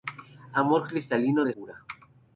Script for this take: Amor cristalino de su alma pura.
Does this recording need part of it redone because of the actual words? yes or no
yes